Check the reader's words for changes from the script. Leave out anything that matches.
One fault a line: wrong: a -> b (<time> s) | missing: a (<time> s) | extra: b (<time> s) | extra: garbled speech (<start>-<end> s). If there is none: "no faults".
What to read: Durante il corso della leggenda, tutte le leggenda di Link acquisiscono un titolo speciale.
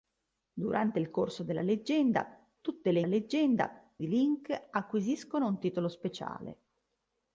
no faults